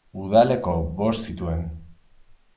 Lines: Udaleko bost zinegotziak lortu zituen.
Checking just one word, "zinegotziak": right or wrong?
wrong